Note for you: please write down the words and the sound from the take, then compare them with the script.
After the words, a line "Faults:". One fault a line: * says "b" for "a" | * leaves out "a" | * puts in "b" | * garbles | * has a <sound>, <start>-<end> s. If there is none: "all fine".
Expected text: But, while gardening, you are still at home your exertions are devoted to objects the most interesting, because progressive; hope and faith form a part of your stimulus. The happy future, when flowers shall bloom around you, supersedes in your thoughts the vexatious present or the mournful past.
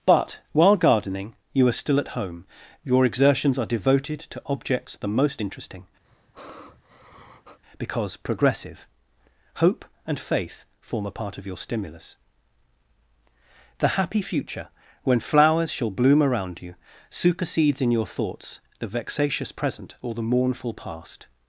But, while gardening, you are still at home your exertions are devoted to objects the most interesting, because progressive; hope and faith form a part of your stimulus. The happy future, when flowers shall bloom around you, supersedes in your thoughts the vexatious present or the mournful past.
Faults:
* has a sigh, 6.0-7.6 s